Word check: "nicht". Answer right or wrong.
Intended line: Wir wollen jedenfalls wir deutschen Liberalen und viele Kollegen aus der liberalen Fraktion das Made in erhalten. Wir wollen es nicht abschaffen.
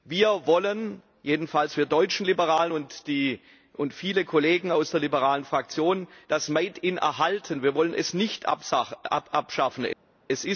right